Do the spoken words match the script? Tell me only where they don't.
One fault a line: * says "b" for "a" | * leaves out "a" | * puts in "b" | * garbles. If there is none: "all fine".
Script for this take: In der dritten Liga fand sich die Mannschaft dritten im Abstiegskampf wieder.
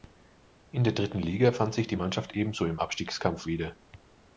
* says "ebenso" for "dritten"